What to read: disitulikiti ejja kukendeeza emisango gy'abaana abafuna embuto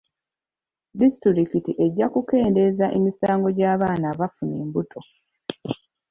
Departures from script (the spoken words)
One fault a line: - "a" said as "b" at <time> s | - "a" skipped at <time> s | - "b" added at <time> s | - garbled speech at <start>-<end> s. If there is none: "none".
none